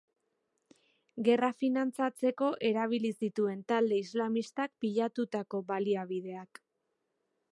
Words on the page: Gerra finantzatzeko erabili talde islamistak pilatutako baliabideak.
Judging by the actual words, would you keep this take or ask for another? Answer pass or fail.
fail